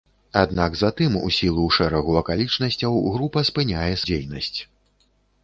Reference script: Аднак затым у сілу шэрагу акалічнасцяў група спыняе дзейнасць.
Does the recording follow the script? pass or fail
pass